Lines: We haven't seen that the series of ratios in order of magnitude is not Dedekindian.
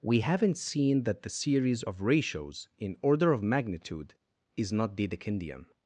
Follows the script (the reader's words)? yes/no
yes